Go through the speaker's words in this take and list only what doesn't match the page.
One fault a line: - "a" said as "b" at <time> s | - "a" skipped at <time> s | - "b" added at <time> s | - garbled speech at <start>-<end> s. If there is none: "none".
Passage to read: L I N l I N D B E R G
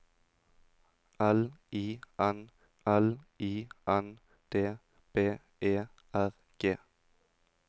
none